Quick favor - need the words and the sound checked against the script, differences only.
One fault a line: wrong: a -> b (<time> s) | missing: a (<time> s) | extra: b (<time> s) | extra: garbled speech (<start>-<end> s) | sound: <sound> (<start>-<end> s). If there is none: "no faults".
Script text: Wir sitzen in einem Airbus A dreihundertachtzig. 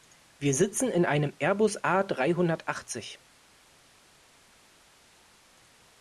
no faults